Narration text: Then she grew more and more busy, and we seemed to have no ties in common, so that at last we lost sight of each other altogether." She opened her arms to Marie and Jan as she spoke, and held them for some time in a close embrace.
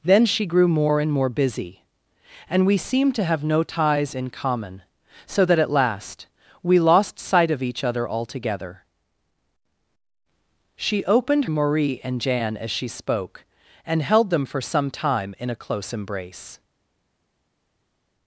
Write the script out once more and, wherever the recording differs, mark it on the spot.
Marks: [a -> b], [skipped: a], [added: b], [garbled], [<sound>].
Then she grew more and more busy, and we seemed to have no ties in common, so that at last we lost sight of each other altogether." She opened [skipped: her arms to] Marie and Jan as she spoke, and held them for some time in a close embrace.